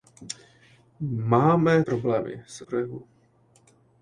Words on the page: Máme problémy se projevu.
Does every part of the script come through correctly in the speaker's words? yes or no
yes